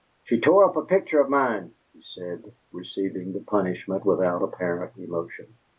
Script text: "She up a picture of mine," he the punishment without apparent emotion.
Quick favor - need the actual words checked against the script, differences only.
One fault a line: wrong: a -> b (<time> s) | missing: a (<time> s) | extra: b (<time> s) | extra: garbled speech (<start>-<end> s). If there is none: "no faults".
extra: tore (0.4 s)
extra: said receiving (2.0 s)